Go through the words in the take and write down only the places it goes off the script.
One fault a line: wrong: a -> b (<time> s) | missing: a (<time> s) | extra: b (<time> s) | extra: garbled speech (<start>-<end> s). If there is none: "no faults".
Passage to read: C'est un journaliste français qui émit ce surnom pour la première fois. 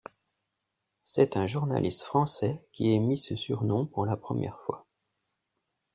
no faults